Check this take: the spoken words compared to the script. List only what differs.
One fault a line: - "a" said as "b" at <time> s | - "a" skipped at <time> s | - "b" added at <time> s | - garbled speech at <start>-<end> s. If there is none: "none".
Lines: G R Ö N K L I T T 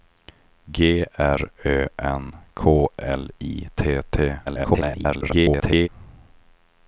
- garbled speech at 4.5-5.9 s